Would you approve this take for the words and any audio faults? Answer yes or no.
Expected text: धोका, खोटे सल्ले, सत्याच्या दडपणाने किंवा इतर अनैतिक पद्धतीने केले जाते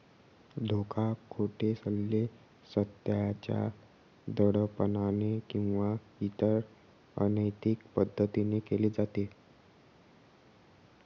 yes